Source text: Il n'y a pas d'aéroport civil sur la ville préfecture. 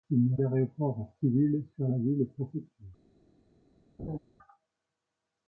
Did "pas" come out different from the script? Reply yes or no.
yes